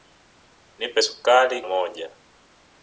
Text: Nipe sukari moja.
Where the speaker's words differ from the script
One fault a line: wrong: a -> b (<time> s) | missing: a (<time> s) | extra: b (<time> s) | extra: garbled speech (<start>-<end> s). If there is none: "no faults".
no faults